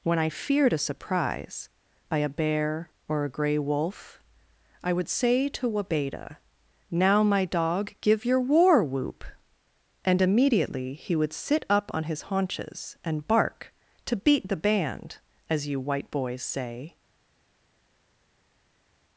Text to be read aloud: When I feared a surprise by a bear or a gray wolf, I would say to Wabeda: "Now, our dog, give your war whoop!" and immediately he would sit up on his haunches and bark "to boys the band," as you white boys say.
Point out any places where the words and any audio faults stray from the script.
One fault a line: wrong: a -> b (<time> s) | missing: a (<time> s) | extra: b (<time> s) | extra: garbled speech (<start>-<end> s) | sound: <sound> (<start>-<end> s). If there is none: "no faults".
wrong: our -> my (7.2 s)
wrong: boys -> beat (14.2 s)